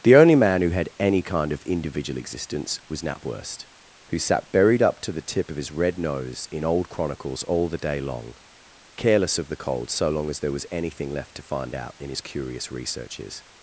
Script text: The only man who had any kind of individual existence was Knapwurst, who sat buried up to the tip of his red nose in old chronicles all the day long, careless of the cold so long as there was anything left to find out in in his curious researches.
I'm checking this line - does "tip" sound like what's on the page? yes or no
yes